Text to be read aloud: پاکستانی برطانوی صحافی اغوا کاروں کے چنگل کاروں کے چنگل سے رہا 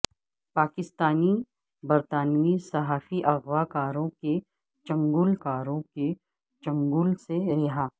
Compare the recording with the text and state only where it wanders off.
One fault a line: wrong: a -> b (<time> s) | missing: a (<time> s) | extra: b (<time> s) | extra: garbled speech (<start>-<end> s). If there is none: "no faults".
no faults